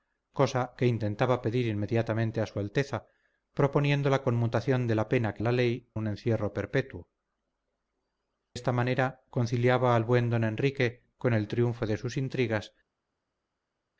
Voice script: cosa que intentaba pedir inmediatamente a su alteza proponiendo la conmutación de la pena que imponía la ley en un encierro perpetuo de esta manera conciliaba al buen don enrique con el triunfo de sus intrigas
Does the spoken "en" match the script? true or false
false